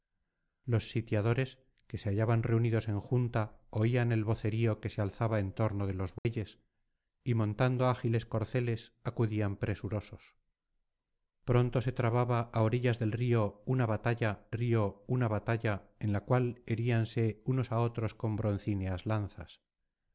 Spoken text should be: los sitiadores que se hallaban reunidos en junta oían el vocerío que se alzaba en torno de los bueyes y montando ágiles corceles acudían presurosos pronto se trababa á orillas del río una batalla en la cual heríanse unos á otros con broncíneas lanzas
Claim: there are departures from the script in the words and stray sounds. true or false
true